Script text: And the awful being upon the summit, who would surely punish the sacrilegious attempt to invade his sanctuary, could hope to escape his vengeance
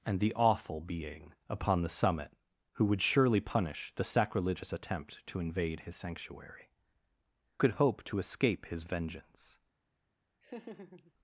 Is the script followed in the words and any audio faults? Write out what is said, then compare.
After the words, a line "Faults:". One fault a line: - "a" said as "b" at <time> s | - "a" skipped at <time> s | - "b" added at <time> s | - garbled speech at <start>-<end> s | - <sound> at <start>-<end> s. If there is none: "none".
And the awful being upon the summit, who would surely punish the sacrilegious attempt to invade his sanctuary, could hope to escape his vengeance
Faults:
- laugh at 10.4-11.1 s